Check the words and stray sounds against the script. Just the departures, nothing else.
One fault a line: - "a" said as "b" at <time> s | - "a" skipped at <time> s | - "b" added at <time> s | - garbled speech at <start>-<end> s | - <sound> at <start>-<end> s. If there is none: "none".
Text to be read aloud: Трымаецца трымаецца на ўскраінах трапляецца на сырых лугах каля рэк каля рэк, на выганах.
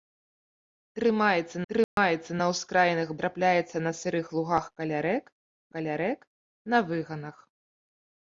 - dropout at 1.8-2.0 s